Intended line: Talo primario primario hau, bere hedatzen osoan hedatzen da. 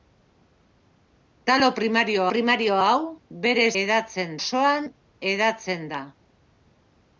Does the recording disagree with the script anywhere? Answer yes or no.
no